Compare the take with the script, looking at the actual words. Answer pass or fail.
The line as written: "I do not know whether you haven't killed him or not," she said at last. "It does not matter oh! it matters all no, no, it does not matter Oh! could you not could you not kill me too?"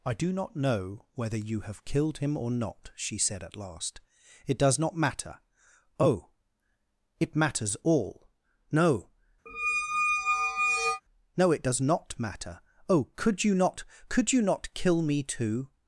fail